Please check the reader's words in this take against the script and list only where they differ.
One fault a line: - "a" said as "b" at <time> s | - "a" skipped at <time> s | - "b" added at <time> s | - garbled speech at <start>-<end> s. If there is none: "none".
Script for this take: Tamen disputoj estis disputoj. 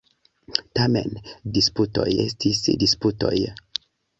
none